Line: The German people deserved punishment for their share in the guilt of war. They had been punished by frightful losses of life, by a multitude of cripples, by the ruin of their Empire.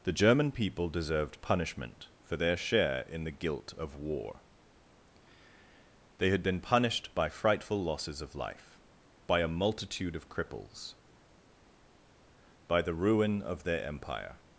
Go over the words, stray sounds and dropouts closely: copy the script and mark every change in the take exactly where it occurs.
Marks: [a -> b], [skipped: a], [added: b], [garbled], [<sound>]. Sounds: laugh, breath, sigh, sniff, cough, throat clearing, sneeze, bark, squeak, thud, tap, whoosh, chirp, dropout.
The German people deserved punishment for their share in the guilt of war. They had been punished by frightful losses of life, by a multitude of cripples, by the ruin of their Empire.